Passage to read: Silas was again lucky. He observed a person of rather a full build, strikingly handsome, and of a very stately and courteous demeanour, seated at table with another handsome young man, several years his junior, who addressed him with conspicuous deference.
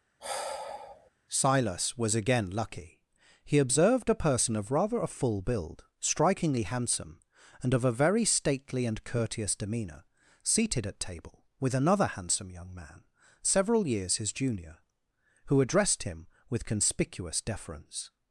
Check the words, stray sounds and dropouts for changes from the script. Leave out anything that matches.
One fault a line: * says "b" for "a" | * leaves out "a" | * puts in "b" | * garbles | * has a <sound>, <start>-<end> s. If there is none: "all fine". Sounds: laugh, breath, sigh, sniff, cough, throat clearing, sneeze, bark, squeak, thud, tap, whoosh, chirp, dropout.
* has a sigh, 0.2-1.1 s